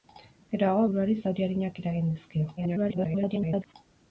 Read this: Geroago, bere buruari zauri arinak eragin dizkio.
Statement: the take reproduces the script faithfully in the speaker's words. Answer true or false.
false